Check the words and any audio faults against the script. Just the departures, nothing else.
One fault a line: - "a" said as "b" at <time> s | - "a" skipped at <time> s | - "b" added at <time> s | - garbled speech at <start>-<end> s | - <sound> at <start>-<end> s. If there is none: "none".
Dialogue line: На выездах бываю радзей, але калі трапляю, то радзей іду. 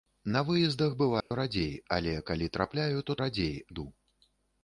- dropout at 1.2-1.3 s